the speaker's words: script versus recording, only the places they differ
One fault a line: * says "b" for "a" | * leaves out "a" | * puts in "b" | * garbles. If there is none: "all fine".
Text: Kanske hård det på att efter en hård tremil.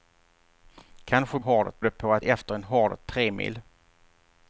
all fine